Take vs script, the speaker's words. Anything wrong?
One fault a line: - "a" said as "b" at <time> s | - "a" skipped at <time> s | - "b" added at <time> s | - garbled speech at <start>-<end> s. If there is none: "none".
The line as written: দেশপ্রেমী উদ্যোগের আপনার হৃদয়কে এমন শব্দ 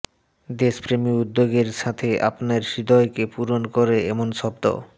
- "সাথে" added at 1.8 s
- "পূরণ করে" added at 3.3 s